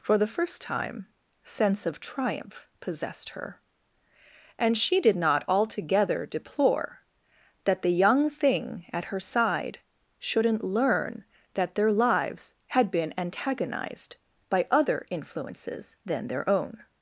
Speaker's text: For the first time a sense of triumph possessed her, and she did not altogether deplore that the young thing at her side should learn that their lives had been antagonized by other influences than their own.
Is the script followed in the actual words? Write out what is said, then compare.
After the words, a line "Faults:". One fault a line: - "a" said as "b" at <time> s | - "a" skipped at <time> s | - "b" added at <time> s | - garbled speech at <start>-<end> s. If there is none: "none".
For the first time sense of triumph possessed her, and she did not altogether deplore that the young thing at her side shouldn't learn that their lives had been antagonized by other influences than their own.
Faults:
- "a" skipped at 1.1 s
- "should" said as "shouldn't" at 10.2 s